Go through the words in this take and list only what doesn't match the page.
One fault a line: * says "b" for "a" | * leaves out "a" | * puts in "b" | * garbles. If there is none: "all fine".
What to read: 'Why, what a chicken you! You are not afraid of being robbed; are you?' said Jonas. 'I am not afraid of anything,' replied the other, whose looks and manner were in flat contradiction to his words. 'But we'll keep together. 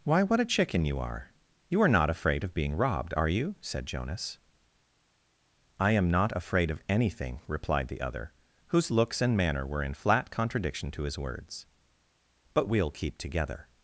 * puts in "are"